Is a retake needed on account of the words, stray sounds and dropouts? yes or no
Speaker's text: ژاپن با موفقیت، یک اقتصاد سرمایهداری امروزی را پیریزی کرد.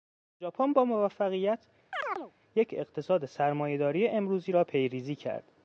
yes